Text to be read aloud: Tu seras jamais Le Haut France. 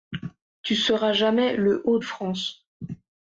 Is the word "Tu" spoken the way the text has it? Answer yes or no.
yes